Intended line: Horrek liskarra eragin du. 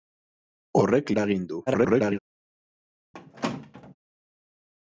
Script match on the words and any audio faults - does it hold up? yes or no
no